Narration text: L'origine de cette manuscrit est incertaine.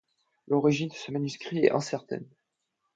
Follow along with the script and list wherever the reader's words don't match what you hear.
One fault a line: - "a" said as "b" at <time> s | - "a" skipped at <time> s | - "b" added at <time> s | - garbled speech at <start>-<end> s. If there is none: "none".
- "cette" said as "ce" at 0.9 s